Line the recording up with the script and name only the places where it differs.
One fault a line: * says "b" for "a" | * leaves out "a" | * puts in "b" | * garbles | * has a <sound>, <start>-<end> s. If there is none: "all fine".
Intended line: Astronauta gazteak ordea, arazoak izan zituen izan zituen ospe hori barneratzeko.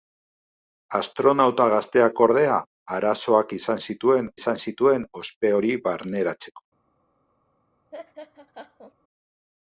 * has a laugh, 7.9-8.9 s